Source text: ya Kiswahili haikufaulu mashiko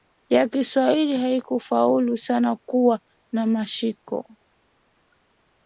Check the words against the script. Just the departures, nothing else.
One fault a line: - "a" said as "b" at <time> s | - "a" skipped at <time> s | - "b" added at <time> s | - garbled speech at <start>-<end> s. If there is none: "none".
- "sana kuwa na" added at 2.2 s